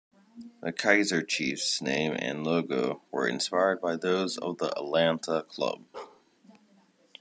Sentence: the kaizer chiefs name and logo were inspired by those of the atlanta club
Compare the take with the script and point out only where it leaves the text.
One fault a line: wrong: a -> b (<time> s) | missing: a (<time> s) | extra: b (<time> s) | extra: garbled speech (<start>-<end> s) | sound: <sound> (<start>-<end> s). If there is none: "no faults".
sound: bark (5.9-6.2 s)